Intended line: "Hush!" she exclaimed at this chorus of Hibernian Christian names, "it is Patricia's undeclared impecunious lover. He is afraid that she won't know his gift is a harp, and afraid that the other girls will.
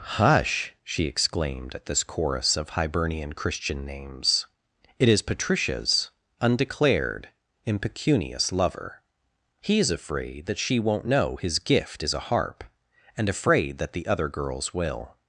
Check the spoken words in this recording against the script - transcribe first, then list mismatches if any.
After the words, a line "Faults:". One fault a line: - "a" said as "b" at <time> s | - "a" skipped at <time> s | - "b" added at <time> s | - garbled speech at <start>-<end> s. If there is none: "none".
"Hush!" she exclaimed at this chorus of Hibernian Christian names, "it is Patricia's undeclared impecunious lover. He is afraid that she won't know his gift is a harp, and afraid that the other girls will.
Faults:
none